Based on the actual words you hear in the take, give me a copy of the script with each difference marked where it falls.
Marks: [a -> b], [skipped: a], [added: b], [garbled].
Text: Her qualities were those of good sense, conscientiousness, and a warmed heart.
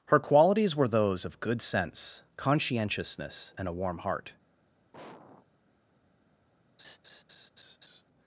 Her qualities were those of good sense, conscientiousness, and a [warmed -> warm] heart.